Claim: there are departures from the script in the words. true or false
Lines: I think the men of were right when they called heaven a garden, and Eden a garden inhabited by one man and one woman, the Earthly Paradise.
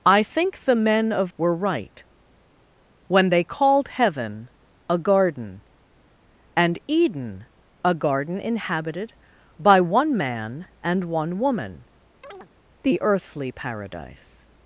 false